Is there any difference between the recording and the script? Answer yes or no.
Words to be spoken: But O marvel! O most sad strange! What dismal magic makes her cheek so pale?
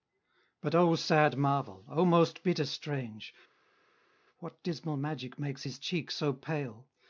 yes